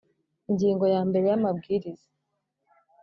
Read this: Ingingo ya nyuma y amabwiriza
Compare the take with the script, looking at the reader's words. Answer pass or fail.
fail